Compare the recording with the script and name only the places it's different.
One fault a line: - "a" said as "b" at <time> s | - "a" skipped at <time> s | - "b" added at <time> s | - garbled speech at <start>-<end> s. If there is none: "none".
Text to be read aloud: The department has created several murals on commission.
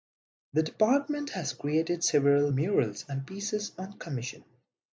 - "and pieces" added at 3.1 s